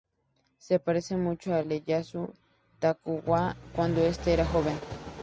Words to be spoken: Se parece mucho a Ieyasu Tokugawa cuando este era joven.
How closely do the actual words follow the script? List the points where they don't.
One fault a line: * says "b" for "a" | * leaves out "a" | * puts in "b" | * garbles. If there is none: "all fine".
all fine